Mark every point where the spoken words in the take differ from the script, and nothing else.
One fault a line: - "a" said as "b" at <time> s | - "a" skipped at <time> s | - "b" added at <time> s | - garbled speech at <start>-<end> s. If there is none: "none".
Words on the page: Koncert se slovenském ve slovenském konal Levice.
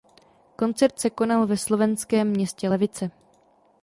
- "slovenském" said as "konal" at 1.1 s
- "konal" said as "městě" at 2.3 s